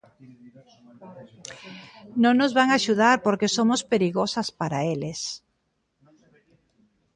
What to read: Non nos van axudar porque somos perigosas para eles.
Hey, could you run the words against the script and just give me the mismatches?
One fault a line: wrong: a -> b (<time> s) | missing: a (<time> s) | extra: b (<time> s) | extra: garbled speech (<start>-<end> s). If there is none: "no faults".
no faults